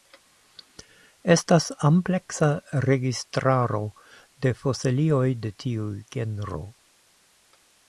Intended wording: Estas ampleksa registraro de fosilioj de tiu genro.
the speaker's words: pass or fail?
pass